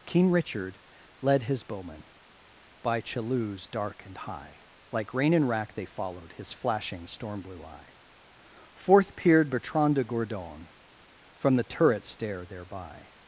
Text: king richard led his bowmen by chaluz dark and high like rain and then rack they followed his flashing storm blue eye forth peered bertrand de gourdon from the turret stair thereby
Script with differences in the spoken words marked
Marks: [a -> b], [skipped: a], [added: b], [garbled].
king richard led his bowmen by chaluz dark and high like rain and [skipped: then] rack they followed his flashing storm blue eye forth peered bertrand de gourdon from the turret stair thereby